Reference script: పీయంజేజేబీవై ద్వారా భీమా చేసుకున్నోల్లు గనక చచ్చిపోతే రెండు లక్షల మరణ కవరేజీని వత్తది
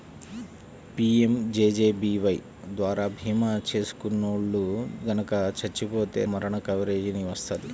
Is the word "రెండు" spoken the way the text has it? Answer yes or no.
no